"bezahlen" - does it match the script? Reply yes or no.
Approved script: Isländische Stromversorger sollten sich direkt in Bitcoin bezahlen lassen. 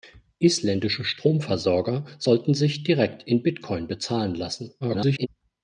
yes